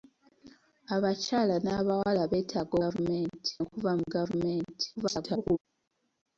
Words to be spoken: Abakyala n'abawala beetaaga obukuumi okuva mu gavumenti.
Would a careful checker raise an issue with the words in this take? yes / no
yes